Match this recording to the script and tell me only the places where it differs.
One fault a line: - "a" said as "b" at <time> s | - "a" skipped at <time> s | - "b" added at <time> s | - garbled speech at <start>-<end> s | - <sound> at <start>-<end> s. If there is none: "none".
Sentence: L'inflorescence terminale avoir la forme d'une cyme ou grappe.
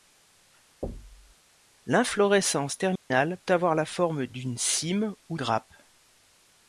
- thud at 0.8-1.4 s
- dropout at 3.0-3.1 s